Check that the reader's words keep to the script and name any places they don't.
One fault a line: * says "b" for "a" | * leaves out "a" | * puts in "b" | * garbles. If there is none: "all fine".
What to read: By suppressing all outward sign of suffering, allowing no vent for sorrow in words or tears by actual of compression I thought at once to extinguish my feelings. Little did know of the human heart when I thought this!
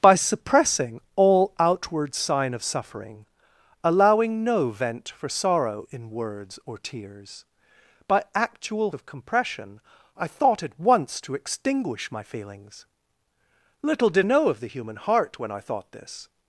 all fine